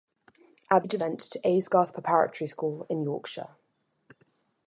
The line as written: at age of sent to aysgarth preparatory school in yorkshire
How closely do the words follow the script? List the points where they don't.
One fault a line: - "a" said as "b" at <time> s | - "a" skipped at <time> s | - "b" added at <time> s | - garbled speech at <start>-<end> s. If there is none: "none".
none